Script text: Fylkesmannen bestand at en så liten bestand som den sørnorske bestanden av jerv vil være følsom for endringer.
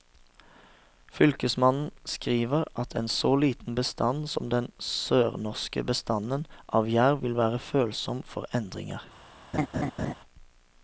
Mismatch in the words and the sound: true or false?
true